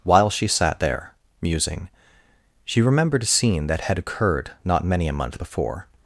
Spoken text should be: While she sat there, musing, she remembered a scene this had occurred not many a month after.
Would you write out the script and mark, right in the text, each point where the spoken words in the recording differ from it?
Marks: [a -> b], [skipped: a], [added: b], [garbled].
While she sat there, musing, she remembered a scene [this -> that] had occurred not many a month [after. -> before]